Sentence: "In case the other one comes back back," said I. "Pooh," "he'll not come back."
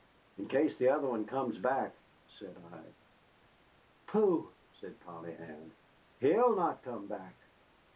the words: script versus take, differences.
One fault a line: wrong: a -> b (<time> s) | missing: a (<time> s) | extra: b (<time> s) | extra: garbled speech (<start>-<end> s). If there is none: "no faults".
missing: back (1.9 s)
extra: said Polly Ann (4.7 s)